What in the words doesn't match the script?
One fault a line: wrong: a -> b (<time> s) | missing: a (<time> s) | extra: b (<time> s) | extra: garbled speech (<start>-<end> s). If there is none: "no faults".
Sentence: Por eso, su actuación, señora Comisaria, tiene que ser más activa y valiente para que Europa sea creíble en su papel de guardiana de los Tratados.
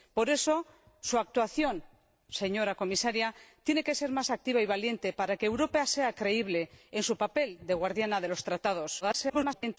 extra: garbled speech (9.0-9.8 s)